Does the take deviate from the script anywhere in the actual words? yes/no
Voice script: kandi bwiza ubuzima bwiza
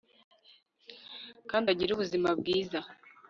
yes